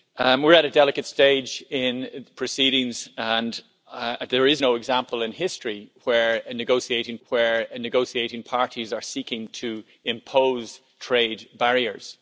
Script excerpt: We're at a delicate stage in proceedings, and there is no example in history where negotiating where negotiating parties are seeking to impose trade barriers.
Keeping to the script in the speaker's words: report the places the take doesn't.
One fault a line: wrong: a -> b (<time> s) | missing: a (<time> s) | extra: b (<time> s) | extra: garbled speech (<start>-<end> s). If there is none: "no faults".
no faults